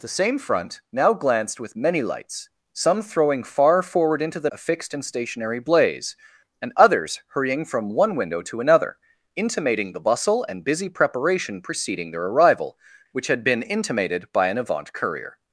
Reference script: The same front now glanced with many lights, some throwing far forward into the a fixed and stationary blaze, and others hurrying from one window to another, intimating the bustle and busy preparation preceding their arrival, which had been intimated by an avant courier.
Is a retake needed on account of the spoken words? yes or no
no